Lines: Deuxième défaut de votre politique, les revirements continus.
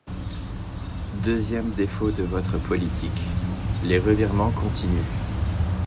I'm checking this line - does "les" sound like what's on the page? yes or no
yes